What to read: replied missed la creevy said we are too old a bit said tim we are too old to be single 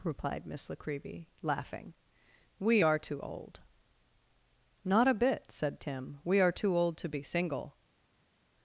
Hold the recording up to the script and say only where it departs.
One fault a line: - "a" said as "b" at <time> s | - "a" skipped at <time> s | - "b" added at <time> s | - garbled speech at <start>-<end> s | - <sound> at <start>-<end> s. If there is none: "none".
- "missed" said as "miss" at 0.5 s
- "said" said as "laughing" at 1.4 s
- "not" added at 4.8 s